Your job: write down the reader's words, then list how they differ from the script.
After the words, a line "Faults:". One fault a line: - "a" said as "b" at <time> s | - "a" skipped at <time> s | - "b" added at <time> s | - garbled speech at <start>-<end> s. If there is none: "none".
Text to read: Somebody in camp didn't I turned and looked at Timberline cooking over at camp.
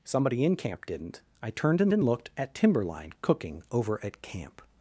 Somebody in camp didn't I turned and and looked at Timberline cooking over at camp.
Faults:
- "and" added at 1.9 s